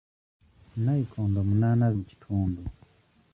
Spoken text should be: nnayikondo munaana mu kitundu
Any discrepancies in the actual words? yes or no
no